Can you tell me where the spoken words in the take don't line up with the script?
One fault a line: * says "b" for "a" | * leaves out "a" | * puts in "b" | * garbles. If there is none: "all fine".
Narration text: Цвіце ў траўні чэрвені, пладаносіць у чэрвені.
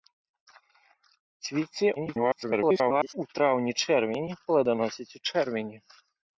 * garbles